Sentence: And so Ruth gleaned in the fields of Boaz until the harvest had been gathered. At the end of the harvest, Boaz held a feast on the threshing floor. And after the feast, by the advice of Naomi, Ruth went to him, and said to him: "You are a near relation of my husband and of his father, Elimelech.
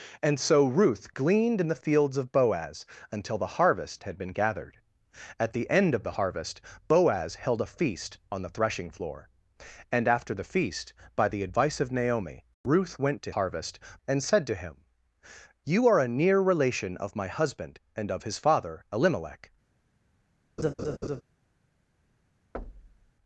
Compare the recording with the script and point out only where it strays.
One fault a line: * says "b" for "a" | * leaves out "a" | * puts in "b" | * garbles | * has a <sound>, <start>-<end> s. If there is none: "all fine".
* says "harvest" for "him"
* has a laugh, 20.6-21.2 s
* has a thud, 22.5-23.1 s